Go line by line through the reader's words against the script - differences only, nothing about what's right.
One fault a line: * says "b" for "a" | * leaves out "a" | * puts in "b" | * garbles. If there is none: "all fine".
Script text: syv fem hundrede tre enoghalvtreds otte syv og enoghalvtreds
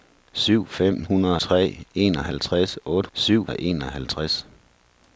all fine